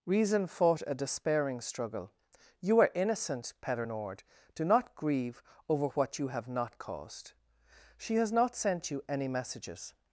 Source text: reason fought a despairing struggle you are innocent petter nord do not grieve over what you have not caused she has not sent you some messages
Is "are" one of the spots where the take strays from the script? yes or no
no